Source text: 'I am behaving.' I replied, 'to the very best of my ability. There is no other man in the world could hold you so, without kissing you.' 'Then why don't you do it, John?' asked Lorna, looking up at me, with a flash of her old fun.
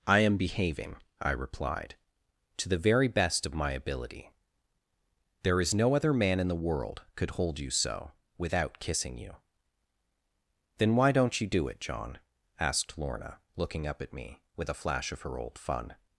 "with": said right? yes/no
yes